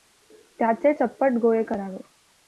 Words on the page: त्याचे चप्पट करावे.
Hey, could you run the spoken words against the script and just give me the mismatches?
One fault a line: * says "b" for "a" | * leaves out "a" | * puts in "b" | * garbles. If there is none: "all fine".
* puts in "गोळे"